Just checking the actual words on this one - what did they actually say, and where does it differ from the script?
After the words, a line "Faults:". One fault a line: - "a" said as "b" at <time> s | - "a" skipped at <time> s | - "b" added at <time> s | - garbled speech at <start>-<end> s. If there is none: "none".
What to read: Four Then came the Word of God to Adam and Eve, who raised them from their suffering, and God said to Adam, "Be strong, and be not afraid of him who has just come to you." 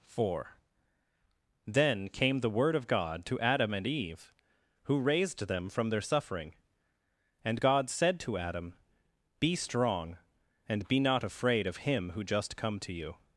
Four Then came the Word of God to Adam and Eve, who raised them from their suffering, and God said to Adam, "Be strong, and be not afraid of him who just come to you."
Faults:
- "has" skipped at 12.2 s